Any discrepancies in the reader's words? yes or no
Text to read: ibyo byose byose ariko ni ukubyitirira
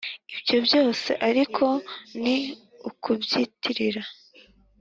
yes